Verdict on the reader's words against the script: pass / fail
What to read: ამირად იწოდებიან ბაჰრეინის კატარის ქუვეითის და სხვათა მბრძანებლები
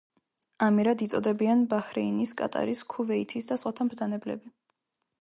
pass